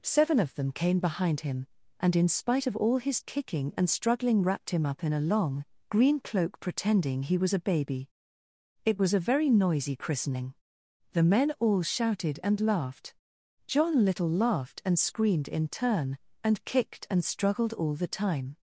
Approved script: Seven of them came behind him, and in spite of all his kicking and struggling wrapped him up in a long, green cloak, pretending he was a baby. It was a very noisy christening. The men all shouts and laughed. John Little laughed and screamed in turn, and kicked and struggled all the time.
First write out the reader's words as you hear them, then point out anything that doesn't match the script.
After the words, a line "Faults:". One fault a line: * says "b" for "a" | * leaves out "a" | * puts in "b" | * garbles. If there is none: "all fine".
Seven of them came behind him, and in spite of all his kicking and struggling wrapped him up in a long, green cloak, pretending he was a baby. It was a very noisy christening. The men all shouted and laughed. John Little laughed and screamed in turn, and kicked and struggled all the time.
Faults:
* says "shouted" for "shouts"